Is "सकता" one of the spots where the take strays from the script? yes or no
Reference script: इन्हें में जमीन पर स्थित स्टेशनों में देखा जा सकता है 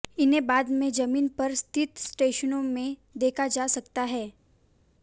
no